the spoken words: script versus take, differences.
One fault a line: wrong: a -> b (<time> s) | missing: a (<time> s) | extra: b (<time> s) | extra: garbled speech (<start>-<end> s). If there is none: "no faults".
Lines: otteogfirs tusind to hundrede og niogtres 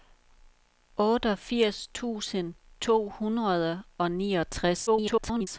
extra: garbled speech (4.9-5.5 s)